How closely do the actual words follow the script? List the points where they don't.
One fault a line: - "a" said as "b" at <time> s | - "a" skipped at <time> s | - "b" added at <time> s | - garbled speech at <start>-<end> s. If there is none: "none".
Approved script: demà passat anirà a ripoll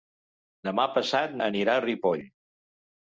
none